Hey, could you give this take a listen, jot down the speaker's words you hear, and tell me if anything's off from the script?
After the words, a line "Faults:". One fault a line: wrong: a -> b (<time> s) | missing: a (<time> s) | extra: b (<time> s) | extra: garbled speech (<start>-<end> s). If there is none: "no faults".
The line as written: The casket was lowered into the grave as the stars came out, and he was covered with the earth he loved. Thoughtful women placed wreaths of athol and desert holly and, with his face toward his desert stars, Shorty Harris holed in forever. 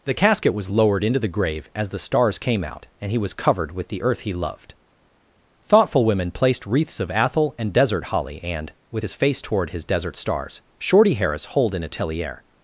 The casket was lowered into the grave as the stars came out, and he was covered with the earth he loved. Thoughtful women placed wreaths of athol and desert holly and, with his face toward his desert stars, Shorty Harris holed in atelier.
Faults:
wrong: forever -> atelier (11.8 s)